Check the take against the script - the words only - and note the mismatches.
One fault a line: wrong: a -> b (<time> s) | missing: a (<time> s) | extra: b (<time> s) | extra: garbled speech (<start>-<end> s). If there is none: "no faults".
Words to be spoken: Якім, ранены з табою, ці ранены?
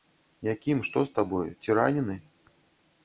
wrong: ранены -> што (0.9 s)